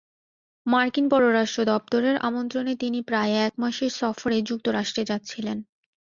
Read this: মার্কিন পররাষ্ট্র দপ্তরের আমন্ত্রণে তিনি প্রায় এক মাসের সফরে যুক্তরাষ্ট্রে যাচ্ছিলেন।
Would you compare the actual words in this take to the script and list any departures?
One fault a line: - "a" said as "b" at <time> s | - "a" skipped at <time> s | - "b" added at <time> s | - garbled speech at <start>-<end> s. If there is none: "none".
none